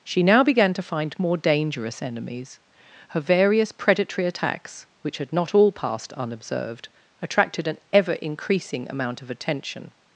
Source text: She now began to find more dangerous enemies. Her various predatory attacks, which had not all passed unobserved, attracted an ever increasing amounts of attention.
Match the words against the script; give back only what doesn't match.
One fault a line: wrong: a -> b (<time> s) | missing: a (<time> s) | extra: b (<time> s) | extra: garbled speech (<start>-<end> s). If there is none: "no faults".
wrong: amounts -> amount (8.9 s)